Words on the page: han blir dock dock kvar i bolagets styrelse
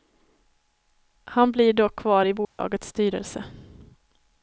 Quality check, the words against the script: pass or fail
fail